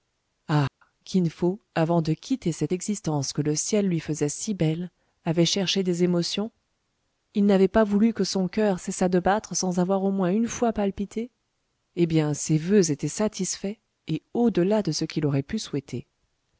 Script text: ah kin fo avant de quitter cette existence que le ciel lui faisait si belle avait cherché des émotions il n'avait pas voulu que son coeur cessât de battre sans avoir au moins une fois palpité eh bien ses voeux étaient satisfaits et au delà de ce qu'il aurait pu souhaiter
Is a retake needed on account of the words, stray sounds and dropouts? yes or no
yes